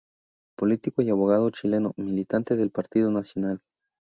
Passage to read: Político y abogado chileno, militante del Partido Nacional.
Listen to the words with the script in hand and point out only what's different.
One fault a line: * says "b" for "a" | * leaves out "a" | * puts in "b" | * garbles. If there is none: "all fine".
all fine